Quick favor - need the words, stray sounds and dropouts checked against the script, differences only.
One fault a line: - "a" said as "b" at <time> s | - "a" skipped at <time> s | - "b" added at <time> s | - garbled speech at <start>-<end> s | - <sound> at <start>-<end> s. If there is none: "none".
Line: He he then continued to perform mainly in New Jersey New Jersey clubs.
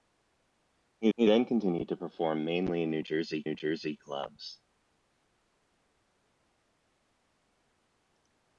none